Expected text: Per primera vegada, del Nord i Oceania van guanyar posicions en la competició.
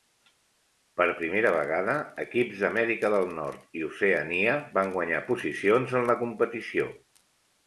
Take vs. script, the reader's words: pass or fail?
fail